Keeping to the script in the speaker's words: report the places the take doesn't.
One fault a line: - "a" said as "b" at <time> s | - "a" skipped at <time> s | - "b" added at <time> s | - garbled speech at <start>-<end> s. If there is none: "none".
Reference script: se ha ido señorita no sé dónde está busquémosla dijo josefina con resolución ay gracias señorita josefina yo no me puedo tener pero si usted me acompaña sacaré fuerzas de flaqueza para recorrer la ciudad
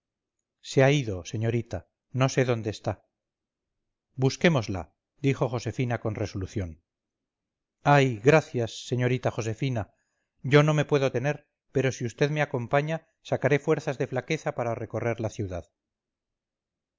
none